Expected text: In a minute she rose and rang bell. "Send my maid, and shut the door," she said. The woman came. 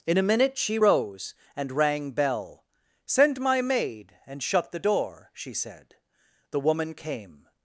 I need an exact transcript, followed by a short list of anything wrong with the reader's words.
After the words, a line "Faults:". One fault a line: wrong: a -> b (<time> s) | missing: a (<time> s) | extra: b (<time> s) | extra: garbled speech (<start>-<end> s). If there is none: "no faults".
In a minute she rose and rang bell. "Send my maid, and shut the door," she said. The woman came.
Faults:
no faults